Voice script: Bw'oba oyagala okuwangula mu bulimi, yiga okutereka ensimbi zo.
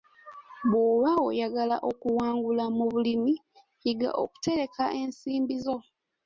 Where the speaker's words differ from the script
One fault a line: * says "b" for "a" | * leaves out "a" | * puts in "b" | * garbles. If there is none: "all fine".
all fine